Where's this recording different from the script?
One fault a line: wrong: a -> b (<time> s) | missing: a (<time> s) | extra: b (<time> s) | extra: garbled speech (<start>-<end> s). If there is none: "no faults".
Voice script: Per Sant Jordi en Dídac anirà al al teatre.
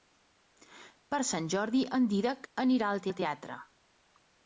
no faults